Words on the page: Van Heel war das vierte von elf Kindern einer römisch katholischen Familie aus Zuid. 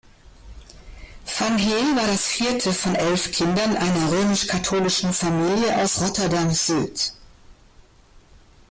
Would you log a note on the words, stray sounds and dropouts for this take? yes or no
yes